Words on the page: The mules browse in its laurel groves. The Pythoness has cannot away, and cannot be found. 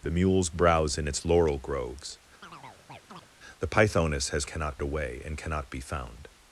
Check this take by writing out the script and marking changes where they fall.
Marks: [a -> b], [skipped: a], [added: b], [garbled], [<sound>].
The mules browse in its laurel groves. [chirp] The Pythoness has cannot away, and cannot be found.